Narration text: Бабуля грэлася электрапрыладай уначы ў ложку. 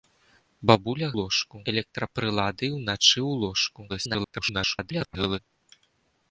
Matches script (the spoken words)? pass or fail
fail